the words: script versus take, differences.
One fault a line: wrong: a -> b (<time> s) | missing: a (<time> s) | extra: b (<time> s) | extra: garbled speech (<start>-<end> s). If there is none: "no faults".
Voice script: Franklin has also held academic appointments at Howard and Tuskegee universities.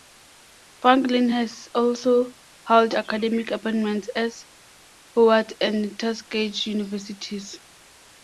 no faults